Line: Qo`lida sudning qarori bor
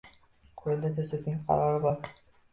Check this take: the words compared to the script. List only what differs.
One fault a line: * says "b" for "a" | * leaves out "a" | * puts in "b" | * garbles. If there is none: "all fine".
all fine